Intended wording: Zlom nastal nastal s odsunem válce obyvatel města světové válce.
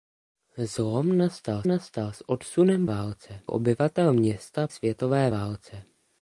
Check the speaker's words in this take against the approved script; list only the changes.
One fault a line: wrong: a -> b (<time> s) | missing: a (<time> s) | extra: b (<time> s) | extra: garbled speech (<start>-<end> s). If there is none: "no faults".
no faults